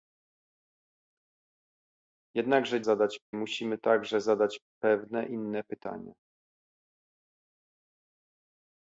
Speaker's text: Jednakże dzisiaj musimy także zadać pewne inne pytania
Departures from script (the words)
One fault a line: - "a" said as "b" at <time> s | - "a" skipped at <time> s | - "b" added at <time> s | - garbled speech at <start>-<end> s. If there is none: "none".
- "dzisiaj" said as "zadać" at 2.8 s